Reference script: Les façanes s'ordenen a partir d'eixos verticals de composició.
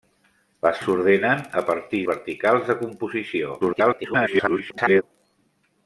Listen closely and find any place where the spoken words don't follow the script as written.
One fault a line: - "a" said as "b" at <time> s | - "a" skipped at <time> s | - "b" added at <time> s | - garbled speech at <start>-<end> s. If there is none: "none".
- "façanes" skipped at 0.8 s
- "d'eixos" skipped at 2.0 s
- garbled speech at 3.6-5.0 s